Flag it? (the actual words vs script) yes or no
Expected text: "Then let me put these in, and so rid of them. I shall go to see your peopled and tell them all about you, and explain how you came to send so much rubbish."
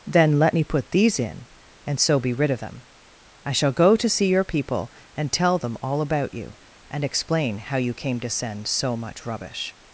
yes